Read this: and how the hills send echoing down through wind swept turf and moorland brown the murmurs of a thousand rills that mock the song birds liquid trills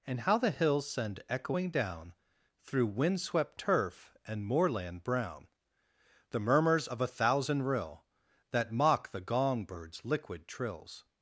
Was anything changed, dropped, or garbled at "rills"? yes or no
yes